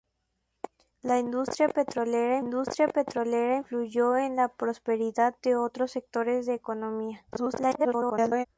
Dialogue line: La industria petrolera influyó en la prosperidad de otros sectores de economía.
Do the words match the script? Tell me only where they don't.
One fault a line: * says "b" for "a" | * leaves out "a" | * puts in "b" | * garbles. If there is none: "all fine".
* puts in "industria petrolera"
* garbles